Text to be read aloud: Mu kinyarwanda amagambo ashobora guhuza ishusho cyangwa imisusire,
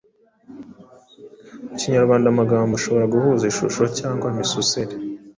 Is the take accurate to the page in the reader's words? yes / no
yes